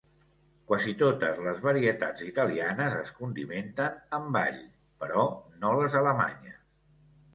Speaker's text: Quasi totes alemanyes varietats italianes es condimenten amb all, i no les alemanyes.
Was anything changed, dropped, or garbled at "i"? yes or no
yes